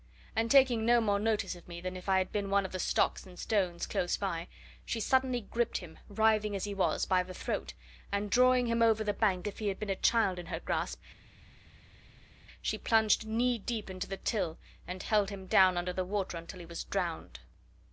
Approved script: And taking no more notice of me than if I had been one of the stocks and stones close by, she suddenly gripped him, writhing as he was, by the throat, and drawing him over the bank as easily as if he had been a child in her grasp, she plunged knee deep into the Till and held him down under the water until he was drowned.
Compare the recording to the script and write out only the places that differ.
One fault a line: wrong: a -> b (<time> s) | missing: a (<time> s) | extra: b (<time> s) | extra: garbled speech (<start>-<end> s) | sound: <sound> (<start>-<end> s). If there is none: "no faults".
missing: as easily as (9.5 s)